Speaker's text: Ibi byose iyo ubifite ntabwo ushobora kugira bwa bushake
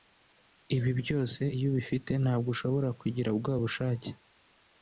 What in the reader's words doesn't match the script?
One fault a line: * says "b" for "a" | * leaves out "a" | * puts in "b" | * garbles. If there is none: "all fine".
all fine